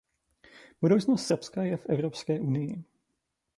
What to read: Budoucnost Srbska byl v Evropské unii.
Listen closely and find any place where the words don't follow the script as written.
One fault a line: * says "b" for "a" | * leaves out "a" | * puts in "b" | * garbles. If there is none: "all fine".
* says "je" for "byl"